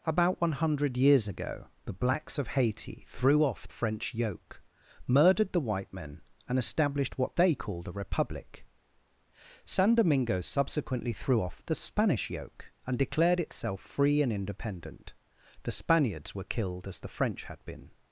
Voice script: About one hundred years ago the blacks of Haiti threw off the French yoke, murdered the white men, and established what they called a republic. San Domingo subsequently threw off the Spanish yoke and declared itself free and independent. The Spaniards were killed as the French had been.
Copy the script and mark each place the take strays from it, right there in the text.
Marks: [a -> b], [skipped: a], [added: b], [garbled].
About one hundred years ago the blacks of Haiti threw off [skipped: the] French yoke, murdered the white men, and established what they called a republic. San Domingo subsequently threw off the Spanish yoke and declared itself free and independent. The Spaniards were killed as the French had been.